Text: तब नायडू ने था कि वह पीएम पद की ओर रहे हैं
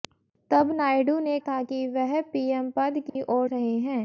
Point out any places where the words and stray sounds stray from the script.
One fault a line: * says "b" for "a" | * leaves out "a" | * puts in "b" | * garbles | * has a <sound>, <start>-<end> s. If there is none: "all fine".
* has a dropout, 3.1-3.2 s